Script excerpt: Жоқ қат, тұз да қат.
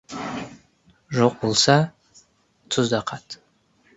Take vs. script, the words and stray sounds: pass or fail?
fail